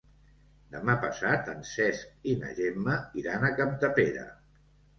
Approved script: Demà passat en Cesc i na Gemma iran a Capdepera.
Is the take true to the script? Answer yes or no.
yes